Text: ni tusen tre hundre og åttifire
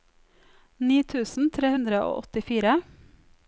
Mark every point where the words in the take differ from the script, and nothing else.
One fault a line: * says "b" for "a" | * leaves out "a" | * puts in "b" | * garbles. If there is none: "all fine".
all fine